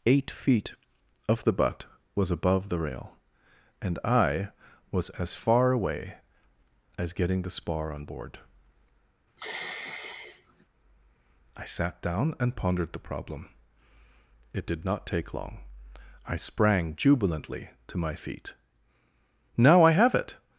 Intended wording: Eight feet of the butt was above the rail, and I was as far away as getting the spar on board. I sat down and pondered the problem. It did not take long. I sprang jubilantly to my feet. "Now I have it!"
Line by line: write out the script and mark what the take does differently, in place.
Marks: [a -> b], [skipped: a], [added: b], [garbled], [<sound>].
Eight feet of the butt was above the rail, and I was as far away as getting the spar on board. [sigh] I sat down and pondered the problem. It did not take long. I sprang jubilantly to my feet. "Now I have it!"